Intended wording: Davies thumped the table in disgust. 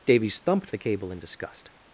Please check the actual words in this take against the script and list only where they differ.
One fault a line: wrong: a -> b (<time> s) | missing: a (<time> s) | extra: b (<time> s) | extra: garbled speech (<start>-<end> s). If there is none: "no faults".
wrong: table -> cable (0.8 s)